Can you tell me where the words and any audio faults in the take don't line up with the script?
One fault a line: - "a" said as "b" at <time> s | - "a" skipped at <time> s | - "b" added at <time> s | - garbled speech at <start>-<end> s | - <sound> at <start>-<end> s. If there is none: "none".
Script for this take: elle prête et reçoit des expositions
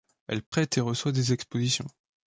- dropout at 0.5-0.5 s